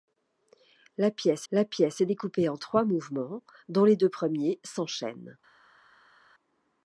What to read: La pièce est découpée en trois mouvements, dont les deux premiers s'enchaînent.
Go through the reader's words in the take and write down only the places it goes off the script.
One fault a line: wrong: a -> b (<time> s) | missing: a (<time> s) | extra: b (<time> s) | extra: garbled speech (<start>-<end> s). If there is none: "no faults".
extra: la pièce (1.5 s)